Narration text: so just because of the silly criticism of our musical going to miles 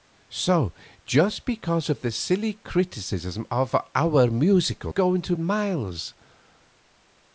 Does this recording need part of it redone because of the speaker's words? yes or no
no